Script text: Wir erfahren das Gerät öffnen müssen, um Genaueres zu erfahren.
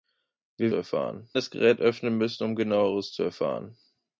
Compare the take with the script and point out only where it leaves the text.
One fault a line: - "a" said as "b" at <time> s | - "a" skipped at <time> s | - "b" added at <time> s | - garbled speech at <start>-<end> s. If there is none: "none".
none